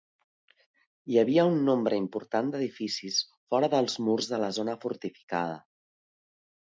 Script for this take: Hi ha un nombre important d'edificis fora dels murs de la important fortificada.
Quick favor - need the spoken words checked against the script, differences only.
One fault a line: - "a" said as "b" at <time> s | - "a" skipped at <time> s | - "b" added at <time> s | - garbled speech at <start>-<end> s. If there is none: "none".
- "ha" said as "havia" at 1.2 s
- "important" said as "zona" at 4.6 s